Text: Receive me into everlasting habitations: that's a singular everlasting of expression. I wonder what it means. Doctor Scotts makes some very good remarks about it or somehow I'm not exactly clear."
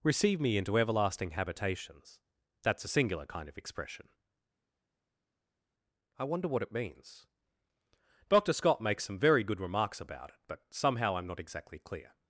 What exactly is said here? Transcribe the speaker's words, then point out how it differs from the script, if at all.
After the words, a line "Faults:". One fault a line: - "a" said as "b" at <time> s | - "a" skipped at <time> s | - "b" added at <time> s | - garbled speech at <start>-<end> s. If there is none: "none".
Receive me into everlasting habitations: that's a singular kind of expression. I wonder what it means. Doctor Scott makes some very good remarks about it but somehow I'm not exactly clear."
Faults:
- "everlasting" said as "kind" at 3.3 s
- "Scotts" said as "Scott" at 8.5 s
- "or" said as "but" at 10.5 s